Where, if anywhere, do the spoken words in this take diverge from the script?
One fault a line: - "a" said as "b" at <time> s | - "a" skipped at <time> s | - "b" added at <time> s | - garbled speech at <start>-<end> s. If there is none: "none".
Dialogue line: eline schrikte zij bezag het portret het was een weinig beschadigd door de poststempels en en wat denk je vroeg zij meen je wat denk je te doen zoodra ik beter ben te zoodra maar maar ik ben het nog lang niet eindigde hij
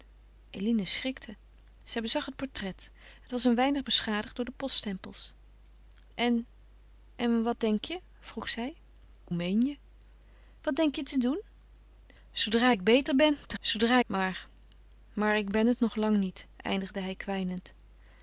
none